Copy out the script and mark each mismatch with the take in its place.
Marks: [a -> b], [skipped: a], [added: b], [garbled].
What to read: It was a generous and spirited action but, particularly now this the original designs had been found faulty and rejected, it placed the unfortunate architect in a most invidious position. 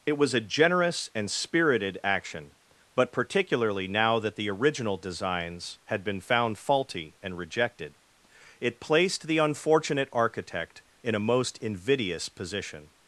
It was a generous and spirited action but, particularly now [this -> that] the original designs had been found faulty and rejected, it placed the unfortunate architect in a most invidious position.